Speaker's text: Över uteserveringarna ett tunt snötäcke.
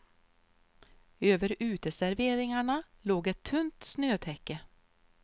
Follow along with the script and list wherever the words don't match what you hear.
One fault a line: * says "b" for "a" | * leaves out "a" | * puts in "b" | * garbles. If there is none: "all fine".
* puts in "låg"